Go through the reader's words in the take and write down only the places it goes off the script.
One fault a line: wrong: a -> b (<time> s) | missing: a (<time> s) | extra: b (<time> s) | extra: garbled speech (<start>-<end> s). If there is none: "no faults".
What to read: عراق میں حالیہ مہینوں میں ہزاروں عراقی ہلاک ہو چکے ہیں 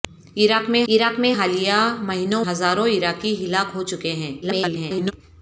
extra: عراق میں (0.9 s)
missing: میں (2.4 s)
extra: garbled speech (4.4-5.1 s)